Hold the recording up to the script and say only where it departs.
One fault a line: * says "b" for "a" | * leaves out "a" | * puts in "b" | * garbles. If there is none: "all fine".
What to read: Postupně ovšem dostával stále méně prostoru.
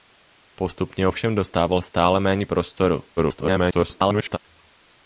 * garbles